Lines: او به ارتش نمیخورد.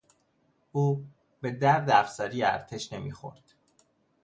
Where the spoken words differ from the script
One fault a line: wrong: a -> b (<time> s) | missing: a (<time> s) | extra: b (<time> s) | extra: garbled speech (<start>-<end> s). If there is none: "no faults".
extra: درد افسری (1.5 s)